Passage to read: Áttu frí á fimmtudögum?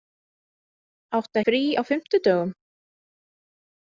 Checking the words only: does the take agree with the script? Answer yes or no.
yes